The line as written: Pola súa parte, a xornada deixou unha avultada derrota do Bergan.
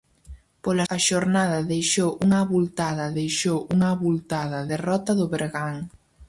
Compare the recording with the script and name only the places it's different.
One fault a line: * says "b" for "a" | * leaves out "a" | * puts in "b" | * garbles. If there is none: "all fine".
* says "a xornada deixou unha avultada" for "súa parte a xornada"